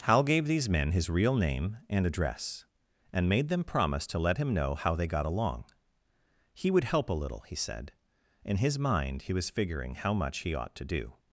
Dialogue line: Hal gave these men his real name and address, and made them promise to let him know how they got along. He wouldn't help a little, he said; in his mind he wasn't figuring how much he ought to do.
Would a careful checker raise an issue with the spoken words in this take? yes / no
yes